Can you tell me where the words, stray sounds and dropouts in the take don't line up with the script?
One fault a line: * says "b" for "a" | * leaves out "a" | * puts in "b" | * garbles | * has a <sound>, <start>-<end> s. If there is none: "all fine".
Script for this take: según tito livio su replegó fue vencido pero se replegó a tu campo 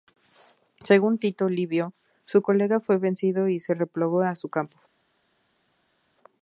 * says "colega" for "replegó"
* says "y" for "pero"
* says "su" for "tu"